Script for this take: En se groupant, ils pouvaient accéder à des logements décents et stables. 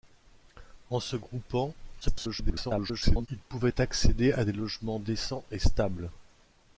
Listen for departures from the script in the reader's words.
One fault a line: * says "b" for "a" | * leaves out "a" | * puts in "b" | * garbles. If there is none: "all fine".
* garbles